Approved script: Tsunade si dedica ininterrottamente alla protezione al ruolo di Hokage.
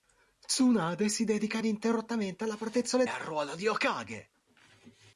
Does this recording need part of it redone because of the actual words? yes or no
no